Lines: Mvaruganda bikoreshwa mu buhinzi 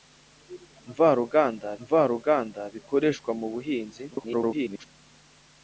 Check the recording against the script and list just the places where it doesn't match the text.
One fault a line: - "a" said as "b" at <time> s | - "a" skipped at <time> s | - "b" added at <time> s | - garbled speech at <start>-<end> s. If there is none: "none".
- "mvaruganda" added at 1.8 s
- garbled speech at 4.1-4.9 s